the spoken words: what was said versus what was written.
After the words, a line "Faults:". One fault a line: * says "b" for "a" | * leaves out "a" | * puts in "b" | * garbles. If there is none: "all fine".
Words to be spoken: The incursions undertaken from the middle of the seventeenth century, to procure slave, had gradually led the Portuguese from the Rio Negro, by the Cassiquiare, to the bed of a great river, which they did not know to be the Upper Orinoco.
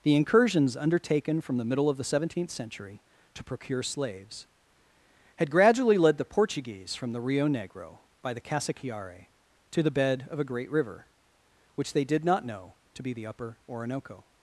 The incursions undertaken from the middle of the seventeenth century, to procure slaves, had gradually led the Portuguese from the Rio Negro, by the Cassiquiare, to the bed of a great river, which they did not know to be the Upper Orinoco.
Faults:
* says "slaves" for "slave"